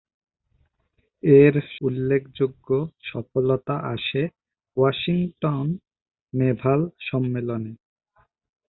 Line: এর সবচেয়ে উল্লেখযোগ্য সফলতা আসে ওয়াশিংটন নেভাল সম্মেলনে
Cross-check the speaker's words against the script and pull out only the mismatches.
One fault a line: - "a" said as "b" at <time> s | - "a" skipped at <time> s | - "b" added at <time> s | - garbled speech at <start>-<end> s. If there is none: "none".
- "সবচেয়ে" skipped at 1.5 s